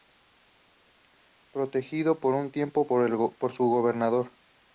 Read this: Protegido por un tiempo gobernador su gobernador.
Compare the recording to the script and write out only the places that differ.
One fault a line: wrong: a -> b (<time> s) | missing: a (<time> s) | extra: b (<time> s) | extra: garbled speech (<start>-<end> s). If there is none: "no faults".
wrong: gobernador -> por (2.8 s)